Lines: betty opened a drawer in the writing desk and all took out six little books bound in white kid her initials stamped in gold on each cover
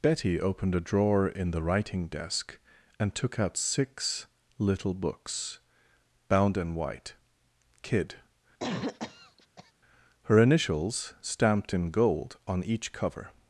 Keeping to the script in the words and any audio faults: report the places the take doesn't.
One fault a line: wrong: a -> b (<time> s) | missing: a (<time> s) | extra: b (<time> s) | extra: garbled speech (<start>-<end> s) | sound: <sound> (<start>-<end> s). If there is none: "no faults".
missing: all (3.1 s)
sound: cough (8.6-9.7 s)